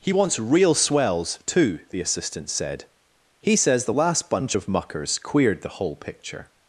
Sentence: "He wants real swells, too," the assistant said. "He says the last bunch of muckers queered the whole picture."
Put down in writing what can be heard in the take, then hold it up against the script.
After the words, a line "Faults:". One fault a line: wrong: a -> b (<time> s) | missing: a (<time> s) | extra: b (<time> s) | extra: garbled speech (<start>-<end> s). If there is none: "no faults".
"He wants real swells, too," the assistant said. "He says the last bunch of muckers queered the whole picture."
Faults:
no faults